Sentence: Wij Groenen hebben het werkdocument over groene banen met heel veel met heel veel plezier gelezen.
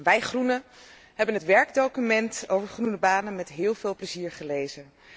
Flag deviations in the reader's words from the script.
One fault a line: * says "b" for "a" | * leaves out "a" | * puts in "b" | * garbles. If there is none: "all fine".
* leaves out "met heel veel"